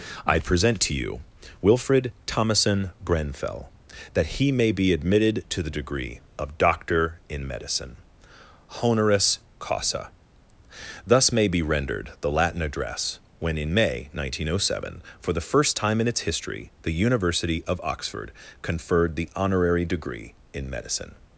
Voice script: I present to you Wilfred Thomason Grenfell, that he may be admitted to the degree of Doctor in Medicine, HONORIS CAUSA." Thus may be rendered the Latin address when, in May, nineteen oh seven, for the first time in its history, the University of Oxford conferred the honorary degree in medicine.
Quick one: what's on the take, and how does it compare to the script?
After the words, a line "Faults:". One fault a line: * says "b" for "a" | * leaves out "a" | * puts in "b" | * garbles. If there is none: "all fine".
I present to you Wilfred Thomason Grenfell, that he may be admitted to the degree of Doctor in Medicine, HONORIS CAUSA." Thus may be rendered the Latin address when, in May, nineteen oh seven, for the first time in its history, the University of Oxford conferred the honorary degree in medicine.
Faults:
all fine